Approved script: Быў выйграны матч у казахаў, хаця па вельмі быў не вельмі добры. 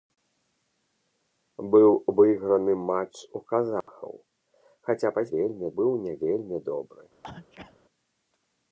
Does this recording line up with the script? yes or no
yes